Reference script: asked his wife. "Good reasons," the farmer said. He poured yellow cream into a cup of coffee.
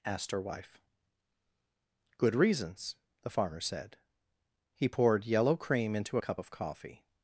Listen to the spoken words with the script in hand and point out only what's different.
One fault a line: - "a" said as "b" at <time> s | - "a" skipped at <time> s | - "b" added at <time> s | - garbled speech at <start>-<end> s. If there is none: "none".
- "his" said as "her" at 0.3 s